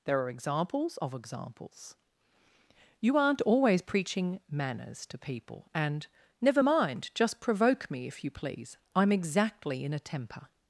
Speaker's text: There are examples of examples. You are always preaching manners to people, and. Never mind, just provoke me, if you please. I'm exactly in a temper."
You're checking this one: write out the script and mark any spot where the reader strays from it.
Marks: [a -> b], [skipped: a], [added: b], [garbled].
There are examples of examples. You [are -> aren't] always preaching manners to people, and. Never mind, just provoke me, if you please. I'm exactly in a temper."